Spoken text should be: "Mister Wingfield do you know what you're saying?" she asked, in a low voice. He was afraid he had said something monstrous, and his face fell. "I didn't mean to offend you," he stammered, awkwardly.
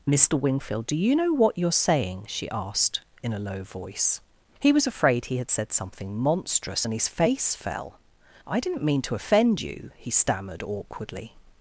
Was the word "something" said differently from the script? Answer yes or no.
no